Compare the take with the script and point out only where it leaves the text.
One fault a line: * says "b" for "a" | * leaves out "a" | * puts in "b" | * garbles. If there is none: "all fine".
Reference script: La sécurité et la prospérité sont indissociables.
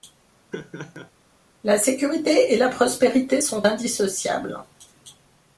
all fine